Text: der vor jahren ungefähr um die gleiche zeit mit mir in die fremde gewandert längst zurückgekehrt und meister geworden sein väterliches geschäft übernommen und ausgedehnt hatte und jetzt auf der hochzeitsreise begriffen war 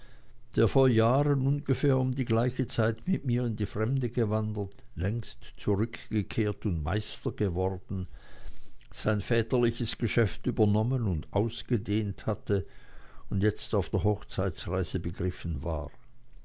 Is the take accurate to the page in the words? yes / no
yes